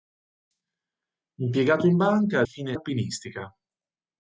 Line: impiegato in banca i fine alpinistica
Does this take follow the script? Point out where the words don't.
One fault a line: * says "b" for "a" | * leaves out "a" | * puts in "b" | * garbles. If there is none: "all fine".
all fine